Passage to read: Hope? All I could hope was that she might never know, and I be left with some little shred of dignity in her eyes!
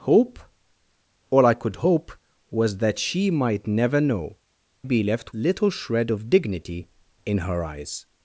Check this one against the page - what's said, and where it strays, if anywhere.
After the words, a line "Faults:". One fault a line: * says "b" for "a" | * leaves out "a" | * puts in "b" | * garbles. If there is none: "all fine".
Hope? All I could hope was that she might never know, be left little shred of dignity in her eyes!
Faults:
* leaves out "and I"
* leaves out "with some"